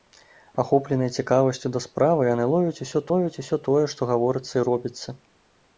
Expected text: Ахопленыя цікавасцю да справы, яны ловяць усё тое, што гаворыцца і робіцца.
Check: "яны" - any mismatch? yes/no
no